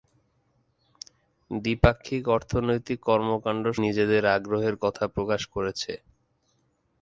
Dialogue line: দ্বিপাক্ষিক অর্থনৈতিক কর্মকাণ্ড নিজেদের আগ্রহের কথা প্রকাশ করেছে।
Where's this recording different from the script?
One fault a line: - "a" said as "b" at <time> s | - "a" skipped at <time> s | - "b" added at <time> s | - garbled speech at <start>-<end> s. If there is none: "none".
none